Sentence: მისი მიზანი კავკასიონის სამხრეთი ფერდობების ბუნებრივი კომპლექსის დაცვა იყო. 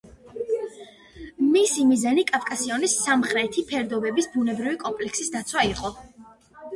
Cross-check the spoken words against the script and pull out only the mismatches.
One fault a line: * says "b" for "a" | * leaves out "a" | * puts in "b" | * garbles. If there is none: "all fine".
all fine